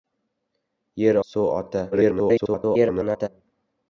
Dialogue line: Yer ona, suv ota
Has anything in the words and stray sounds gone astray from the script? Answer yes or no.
yes